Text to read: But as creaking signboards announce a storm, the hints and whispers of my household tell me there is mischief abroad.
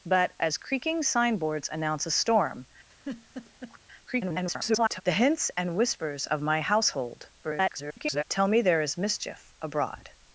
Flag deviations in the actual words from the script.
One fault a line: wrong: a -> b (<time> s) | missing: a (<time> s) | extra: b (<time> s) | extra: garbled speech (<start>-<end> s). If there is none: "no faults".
extra: garbled speech (4.1-5.0 s)
extra: garbled speech (7.4-8.2 s)